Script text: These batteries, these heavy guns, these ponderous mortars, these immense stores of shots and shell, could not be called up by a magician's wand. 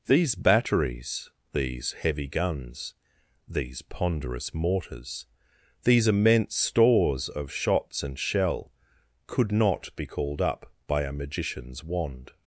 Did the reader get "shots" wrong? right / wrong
right